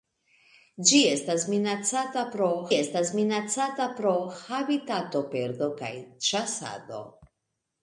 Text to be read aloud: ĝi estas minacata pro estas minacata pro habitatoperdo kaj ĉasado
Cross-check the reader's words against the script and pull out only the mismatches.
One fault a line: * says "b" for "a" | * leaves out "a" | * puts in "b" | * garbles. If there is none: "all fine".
all fine